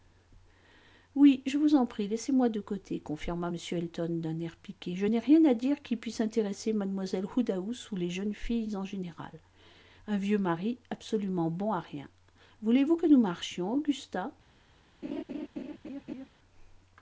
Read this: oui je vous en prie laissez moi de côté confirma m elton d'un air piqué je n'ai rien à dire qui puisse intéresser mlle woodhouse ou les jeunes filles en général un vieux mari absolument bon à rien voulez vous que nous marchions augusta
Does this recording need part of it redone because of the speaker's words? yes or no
no